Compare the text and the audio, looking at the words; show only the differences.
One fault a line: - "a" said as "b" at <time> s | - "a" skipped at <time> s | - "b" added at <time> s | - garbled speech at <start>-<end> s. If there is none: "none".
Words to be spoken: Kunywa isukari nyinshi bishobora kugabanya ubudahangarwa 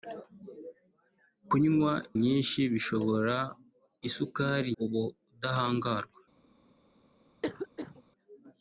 - "isukari" skipped at 1.9 s
- "kugabanya" said as "isukari" at 4.1 s